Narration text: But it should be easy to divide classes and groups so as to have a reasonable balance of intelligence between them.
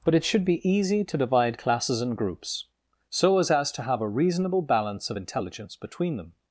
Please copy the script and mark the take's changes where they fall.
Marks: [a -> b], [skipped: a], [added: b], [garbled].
But it should be easy to divide classes and groups so as [added: as] to have a reasonable balance of intelligence between them.